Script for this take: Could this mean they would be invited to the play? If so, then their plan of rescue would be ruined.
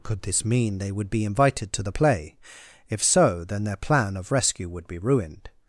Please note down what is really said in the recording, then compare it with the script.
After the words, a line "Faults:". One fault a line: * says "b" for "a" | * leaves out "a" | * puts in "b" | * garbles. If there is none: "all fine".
Could this mean they would be invited to the play? If so, then their plan of rescue would be ruined.
Faults:
all fine